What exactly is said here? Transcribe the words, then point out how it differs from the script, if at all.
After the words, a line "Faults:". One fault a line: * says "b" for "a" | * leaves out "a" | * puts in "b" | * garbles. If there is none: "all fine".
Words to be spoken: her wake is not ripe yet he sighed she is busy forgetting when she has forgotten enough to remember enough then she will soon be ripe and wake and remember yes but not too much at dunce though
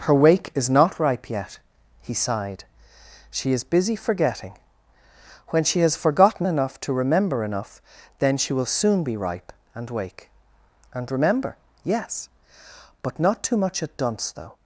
her wake is not ripe yet he sighed she is busy forgetting when she has forgotten enough to remember enough then she will soon be ripe and wake and remember yes but not too much at dunce though
Faults:
all fine